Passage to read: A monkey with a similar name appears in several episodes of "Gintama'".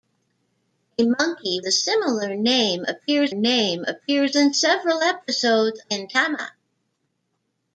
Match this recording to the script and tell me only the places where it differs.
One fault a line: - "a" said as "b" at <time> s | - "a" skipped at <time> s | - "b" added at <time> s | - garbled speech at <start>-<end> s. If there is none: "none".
- "with" skipped at 1.6 s
- "name appears" added at 3.3 s
- "of" skipped at 5.8 s